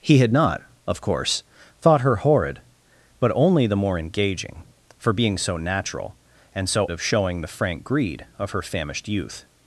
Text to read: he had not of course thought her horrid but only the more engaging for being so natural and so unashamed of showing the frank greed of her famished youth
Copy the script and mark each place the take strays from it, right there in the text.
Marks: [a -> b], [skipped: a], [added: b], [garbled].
he had not of course thought her horrid but only the more engaging for being so natural and so [skipped: unashamed] of showing the frank greed of her famished youth